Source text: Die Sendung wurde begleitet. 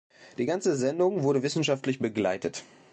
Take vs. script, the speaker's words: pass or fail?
fail